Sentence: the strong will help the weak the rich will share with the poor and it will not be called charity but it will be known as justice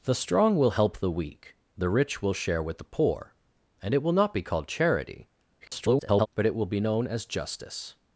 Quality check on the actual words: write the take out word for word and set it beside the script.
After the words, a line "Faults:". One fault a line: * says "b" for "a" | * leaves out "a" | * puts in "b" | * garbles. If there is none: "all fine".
the strong will help the weak the rich will share with the poor and it will not be called charity [garbled] but it will be known as justice
Faults:
* garbles